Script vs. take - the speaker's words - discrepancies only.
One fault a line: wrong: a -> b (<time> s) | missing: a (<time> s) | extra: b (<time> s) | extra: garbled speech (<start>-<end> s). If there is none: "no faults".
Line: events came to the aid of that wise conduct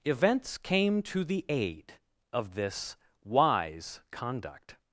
wrong: that -> this (2.5 s)